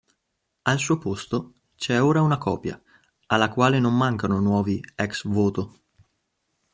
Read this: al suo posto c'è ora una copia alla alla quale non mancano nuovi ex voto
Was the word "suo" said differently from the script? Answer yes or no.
no